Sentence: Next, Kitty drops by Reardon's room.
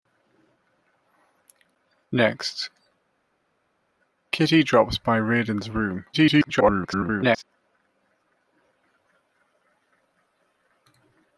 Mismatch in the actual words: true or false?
true